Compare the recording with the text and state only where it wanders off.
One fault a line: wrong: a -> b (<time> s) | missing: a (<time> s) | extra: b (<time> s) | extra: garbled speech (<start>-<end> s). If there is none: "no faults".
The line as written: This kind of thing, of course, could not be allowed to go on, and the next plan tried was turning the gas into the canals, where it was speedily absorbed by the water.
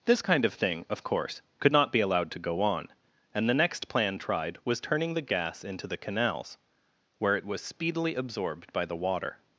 no faults